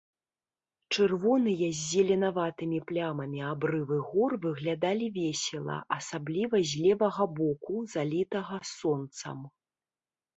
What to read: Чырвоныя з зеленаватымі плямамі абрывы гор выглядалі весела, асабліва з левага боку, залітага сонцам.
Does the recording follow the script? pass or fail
pass